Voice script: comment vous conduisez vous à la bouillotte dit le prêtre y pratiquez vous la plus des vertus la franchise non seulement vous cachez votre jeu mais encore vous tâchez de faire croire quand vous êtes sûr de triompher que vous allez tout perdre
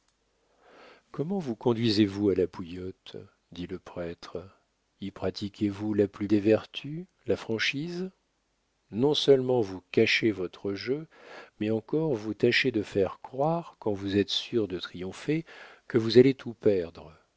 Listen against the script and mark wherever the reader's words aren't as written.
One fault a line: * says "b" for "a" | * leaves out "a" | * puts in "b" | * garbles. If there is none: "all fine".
all fine